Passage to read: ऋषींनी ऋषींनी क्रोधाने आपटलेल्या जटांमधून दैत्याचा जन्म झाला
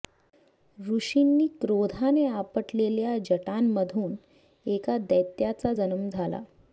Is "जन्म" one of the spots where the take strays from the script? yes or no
no